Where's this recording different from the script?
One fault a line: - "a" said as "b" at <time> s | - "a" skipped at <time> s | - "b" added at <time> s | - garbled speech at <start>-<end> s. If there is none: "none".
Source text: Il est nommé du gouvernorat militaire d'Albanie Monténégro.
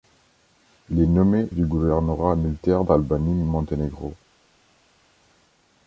none